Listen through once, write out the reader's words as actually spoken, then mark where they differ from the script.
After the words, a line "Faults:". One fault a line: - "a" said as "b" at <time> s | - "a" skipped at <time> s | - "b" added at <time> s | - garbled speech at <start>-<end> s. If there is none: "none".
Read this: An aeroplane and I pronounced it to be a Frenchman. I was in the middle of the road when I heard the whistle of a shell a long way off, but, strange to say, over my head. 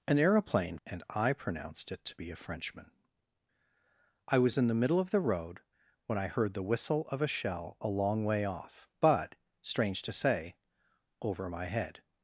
An aeroplane and I pronounced it to be a Frenchman. I was in the middle of the road when I heard the whistle of a shell a long way off, but, strange to say, over my head.
Faults:
none